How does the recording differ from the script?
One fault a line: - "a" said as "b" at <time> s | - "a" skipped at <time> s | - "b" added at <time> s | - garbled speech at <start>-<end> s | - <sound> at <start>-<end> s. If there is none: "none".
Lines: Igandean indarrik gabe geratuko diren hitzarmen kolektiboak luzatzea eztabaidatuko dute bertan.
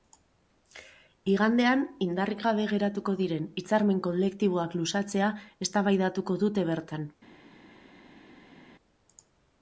none